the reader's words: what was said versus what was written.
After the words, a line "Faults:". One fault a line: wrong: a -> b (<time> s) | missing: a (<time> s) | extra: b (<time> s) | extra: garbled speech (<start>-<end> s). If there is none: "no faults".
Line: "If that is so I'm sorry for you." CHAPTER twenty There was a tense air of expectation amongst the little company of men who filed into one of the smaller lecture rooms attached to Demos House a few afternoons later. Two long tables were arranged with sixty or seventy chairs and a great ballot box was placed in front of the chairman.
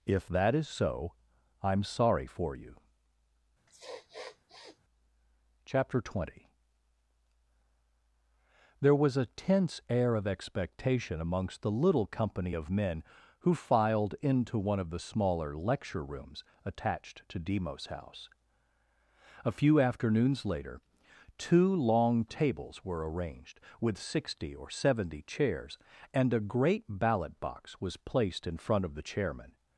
"If that is so I'm sorry for you." CHAPTER twenty There was a tense air of expectation amongst the little company of men who filed into one of the smaller lecture rooms attached to Demos House a few afternoons later. Two long tables were arranged with sixty or seventy chairs and a great ballot box was placed in front of the chairman.
Faults:
no faults